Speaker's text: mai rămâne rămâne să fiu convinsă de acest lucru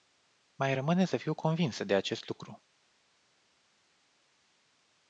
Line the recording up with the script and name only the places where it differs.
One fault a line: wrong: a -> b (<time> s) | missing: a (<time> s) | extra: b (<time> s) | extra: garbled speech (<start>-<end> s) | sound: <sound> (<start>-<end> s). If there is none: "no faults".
missing: rămâne (1.0 s)